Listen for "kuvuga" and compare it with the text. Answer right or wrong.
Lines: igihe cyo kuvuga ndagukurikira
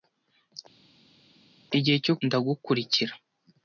wrong